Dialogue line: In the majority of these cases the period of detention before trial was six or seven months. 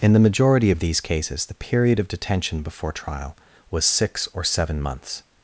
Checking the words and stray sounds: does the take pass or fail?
pass